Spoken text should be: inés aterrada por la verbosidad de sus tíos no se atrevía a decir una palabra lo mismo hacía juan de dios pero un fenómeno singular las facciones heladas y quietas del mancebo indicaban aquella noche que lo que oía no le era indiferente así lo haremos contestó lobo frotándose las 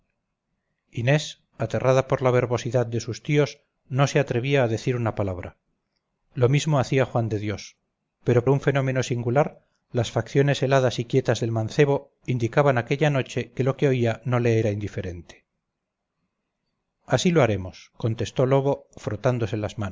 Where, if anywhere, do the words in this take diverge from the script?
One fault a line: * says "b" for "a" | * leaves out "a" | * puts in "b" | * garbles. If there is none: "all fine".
all fine